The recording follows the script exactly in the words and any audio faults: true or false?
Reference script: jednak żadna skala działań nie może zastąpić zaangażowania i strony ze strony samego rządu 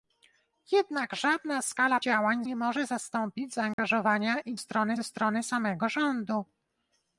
false